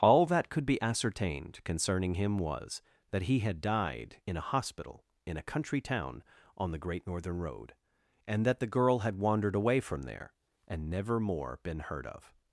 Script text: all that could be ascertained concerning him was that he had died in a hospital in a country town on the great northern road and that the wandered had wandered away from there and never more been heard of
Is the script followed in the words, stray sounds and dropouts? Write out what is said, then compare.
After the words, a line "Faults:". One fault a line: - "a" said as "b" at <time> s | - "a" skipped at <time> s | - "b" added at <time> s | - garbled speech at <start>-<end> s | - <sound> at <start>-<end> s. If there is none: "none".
all that could be ascertained concerning him was that he had died in a hospital in a country town on the great northern road and that the girl had wandered away from there and never more been heard of
Faults:
- "wandered" said as "girl" at 8.7 s